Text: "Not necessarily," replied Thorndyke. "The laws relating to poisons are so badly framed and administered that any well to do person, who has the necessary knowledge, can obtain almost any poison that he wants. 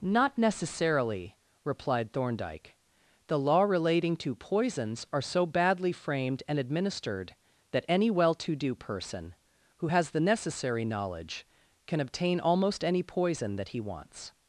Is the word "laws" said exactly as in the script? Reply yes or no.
no